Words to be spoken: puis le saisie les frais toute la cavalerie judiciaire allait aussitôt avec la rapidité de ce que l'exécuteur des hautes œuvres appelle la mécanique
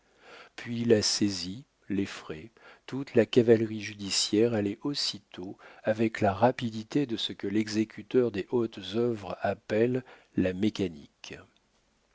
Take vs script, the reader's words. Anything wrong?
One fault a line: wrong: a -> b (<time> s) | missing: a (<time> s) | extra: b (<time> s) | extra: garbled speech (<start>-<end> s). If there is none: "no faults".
wrong: le -> la (0.8 s)